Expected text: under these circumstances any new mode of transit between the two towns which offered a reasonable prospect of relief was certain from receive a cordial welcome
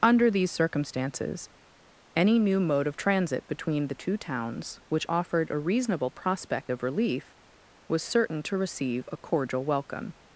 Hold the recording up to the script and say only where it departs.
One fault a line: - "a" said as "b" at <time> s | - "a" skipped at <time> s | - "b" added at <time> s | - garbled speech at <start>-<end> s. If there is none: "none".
- "from" said as "to" at 8.4 s